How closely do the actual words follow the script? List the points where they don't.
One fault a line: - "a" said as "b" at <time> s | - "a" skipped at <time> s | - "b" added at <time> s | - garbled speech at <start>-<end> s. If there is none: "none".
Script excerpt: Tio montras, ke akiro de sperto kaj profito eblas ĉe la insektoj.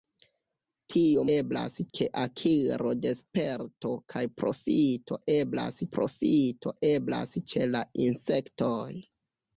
- "montras" said as "eblas" at 1.4 s
- "profito eblas" added at 5.9 s